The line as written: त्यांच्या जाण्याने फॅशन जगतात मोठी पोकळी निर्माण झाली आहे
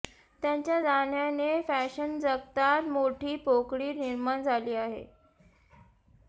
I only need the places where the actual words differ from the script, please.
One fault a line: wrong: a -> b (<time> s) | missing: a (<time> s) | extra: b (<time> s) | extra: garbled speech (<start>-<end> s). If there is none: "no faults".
no faults